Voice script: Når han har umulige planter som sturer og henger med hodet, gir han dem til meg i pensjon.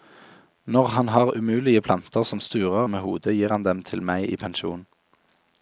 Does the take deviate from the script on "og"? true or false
true